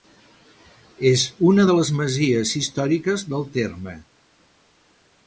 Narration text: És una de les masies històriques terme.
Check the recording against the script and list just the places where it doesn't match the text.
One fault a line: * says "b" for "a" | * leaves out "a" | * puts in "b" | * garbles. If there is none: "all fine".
* puts in "del"